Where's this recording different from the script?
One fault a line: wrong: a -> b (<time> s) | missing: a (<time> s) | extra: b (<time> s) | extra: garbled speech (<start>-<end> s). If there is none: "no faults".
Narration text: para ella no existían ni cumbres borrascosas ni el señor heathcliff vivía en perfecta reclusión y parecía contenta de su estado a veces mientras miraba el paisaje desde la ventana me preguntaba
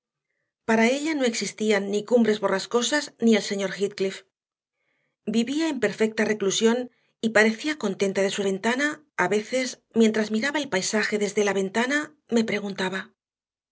wrong: estado -> ventana (8.4 s)